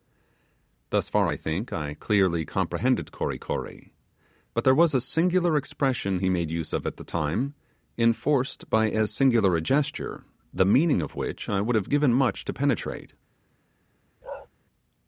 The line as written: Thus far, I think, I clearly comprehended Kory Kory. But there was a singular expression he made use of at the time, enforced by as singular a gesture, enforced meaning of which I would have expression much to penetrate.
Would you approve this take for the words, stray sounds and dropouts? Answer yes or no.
no